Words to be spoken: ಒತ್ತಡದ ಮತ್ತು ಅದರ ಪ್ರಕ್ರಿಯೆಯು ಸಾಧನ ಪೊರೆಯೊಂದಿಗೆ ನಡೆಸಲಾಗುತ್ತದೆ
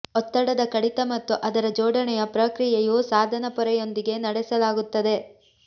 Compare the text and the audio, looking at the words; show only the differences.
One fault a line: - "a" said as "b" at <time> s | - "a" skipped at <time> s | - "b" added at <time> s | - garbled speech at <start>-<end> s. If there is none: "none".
- "ಕಡಿತ" added at 0.7 s
- "ಜೋಡಣೆಯ" added at 1.7 s